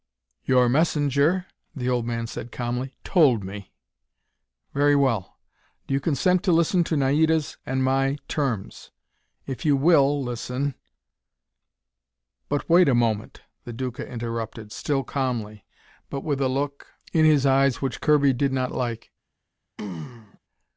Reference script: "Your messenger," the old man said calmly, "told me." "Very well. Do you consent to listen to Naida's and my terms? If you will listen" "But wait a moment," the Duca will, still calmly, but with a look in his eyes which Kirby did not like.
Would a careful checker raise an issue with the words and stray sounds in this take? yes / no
yes